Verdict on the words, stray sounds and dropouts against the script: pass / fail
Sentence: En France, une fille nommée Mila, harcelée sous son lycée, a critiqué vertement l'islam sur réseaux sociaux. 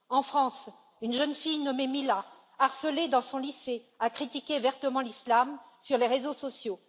fail